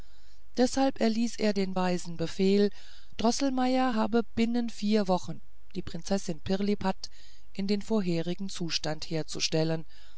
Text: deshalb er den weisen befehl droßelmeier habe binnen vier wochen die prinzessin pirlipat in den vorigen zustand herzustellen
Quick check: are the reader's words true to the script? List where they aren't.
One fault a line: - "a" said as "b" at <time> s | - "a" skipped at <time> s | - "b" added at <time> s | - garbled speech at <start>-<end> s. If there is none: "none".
- "erließ" added at 1.0 s